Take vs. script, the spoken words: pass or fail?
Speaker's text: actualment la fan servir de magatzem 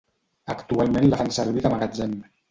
pass